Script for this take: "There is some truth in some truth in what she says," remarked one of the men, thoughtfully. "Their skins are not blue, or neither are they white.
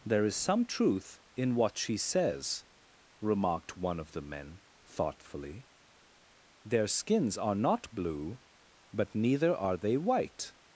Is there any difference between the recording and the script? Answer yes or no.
yes